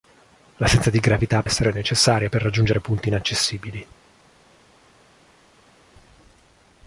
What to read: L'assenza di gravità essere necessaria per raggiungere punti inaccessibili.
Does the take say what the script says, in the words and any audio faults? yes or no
yes